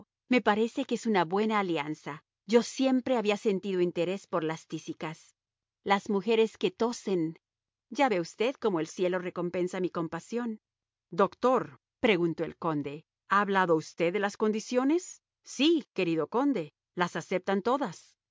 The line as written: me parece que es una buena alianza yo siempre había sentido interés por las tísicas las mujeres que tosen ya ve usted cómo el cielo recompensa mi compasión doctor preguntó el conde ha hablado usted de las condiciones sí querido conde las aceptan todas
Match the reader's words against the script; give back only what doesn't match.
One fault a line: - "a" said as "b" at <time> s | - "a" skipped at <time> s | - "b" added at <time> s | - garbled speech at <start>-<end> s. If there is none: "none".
none